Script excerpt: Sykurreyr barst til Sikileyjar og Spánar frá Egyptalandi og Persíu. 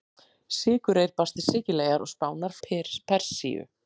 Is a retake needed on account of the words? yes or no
yes